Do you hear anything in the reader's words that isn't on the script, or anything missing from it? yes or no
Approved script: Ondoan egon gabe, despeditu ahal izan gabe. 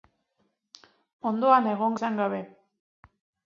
yes